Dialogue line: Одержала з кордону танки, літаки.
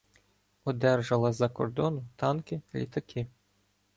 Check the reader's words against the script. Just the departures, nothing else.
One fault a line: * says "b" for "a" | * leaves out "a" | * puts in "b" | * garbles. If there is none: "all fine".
* puts in "за"